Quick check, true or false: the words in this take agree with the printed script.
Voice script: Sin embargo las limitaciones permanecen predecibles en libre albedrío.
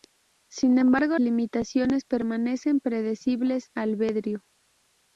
false